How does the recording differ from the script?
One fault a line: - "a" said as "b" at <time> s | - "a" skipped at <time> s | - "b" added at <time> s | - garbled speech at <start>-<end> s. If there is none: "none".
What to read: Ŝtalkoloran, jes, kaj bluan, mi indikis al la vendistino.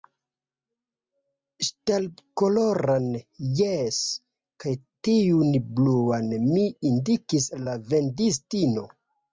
- "tiun" added at 5.1 s